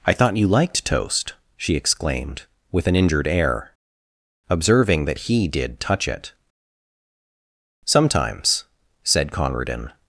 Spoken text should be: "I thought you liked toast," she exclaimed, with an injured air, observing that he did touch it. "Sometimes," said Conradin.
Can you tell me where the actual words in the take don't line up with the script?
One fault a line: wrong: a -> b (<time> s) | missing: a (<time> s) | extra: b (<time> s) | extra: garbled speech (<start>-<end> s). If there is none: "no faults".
no faults